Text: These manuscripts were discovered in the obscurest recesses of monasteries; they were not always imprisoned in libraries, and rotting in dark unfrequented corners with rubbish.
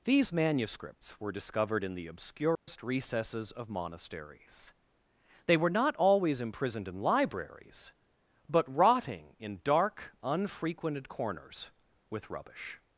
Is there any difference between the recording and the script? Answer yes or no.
yes